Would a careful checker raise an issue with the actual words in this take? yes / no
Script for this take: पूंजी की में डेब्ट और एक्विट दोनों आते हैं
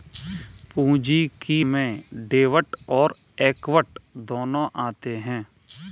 no